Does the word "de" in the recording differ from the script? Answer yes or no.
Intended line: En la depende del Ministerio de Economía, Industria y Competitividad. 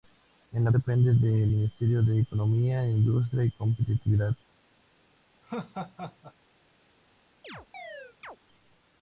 no